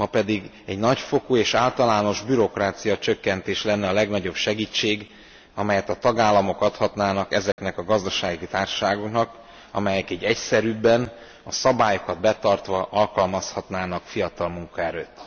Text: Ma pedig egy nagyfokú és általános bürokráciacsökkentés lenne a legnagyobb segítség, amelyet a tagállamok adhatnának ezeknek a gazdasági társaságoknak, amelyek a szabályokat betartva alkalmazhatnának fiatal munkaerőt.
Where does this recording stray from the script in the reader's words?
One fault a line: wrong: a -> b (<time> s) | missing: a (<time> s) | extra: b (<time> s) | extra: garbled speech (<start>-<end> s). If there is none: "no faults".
extra: így egyszerűbben (10.1 s)